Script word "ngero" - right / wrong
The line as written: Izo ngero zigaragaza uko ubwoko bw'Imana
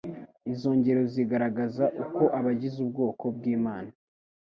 right